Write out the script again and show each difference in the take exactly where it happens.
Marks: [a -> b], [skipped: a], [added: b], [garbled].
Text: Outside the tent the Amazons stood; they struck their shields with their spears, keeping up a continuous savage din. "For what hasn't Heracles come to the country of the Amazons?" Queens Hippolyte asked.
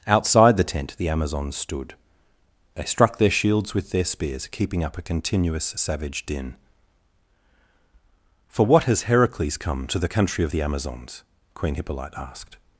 Outside the tent the Amazons stood; they struck their shields with their spears, keeping up a continuous savage din. "For what [hasn't -> has] Heracles come to the country of the Amazons?" [Queens -> Queen] Hippolyte asked.